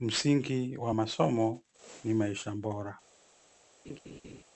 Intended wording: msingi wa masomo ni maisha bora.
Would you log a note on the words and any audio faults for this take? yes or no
yes